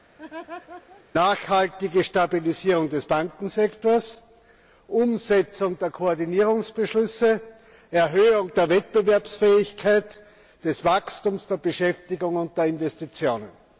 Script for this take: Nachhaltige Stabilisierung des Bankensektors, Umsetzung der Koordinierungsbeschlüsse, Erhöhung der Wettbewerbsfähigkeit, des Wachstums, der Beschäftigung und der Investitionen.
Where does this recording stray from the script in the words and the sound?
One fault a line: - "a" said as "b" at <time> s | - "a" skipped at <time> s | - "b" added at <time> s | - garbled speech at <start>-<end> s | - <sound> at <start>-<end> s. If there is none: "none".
- laugh at 0.2-1.1 s